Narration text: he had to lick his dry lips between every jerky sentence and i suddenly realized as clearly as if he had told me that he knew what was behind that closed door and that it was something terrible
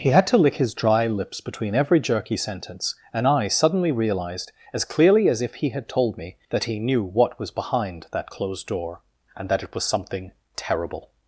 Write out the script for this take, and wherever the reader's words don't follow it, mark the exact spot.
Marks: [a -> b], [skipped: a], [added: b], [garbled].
he had to lick his dry lips between every jerky sentence and i suddenly realized as clearly as if he had told me that he knew what was behind that closed door and that it was something terrible